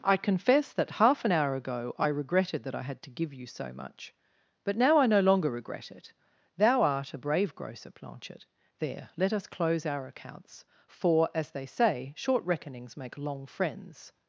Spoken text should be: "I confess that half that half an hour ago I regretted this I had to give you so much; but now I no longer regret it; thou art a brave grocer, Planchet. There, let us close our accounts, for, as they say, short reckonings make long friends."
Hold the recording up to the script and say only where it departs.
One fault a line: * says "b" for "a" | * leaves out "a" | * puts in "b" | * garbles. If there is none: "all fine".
* leaves out "that half"
* says "that" for "this"